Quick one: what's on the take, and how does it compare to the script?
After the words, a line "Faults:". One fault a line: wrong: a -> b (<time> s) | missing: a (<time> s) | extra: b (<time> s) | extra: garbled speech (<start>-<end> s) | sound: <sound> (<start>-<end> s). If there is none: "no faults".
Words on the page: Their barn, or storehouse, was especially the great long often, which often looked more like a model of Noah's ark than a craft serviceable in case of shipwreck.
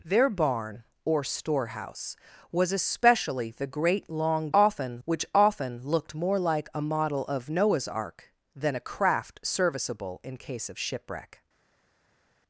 Their barn, or storehouse, was especially the great long often, which often looked more like a model of Noah's ark than a craft serviceable in case of shipwreck.
Faults:
no faults